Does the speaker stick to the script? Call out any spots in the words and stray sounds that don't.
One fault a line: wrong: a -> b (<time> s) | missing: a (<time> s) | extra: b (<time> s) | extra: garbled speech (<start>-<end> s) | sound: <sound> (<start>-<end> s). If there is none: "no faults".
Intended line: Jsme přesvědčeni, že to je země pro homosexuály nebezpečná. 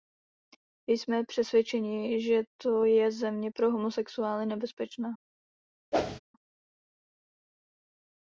sound: whoosh (5.9-6.2 s)